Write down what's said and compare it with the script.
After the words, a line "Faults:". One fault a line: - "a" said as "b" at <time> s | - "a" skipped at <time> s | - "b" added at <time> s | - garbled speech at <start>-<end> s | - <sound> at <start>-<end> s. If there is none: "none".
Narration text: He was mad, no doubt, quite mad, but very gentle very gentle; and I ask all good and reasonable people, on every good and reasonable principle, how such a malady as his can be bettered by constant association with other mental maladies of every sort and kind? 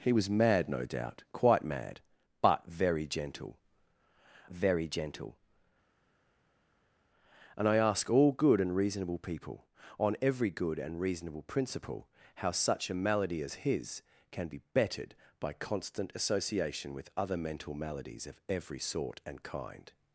He was mad, no doubt, quite mad, but very gentle very gentle; and I ask all good and reasonable people, on every good and reasonable principle, how such a malady as his can be bettered by constant association with other mental maladies of every sort and kind?
Faults:
none